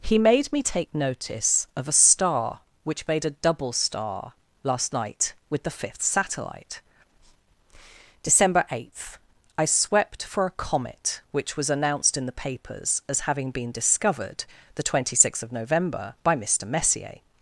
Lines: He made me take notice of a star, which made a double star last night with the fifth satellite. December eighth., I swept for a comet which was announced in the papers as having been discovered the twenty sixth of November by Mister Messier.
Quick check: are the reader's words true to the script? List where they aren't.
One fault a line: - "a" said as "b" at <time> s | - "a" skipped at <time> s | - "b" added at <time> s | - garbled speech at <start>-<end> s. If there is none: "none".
none